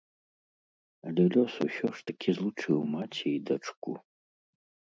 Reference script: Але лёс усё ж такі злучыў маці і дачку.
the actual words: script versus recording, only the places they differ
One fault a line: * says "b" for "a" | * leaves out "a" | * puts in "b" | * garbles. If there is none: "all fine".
all fine